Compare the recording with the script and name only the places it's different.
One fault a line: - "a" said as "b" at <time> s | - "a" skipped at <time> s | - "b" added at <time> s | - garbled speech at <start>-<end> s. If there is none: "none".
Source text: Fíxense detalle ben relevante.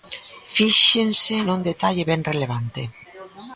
- "nun" added at 1.5 s